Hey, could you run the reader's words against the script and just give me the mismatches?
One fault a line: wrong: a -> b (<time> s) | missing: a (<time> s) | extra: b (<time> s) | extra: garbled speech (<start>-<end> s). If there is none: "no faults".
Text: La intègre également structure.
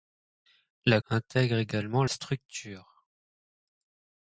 no faults